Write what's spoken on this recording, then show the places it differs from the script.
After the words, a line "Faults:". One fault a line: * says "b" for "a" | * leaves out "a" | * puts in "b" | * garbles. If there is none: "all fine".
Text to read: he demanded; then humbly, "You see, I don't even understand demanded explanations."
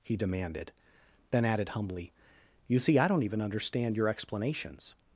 he demanded; then added humbly, "You see, I don't even understand your explanations."
Faults:
* puts in "added"
* says "your" for "demanded"